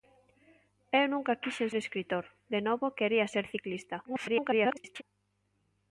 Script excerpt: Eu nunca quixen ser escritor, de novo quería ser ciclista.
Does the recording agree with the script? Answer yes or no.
no